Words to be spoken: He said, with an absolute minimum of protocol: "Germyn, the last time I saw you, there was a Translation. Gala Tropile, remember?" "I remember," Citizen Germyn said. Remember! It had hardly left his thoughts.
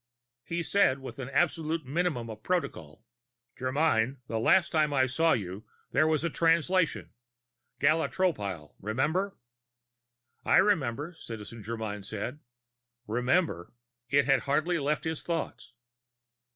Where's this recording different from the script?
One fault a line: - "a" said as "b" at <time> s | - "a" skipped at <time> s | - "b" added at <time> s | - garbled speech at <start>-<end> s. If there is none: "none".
none